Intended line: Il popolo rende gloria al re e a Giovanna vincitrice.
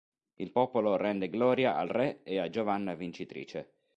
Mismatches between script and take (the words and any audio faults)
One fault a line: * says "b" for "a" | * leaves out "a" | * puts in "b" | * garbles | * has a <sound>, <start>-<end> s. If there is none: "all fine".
all fine